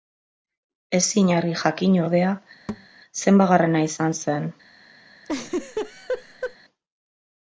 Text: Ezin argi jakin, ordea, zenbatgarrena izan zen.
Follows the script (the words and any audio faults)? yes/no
no